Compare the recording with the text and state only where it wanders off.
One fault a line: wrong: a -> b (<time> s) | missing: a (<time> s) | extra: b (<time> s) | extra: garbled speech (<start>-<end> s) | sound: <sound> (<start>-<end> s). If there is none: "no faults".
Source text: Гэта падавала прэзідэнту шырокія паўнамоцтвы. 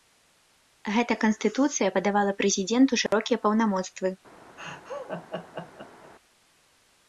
extra: канстытуцыя (1.2 s)
sound: dropout (3.1-3.1 s)
sound: laugh (4.6-6.1 s)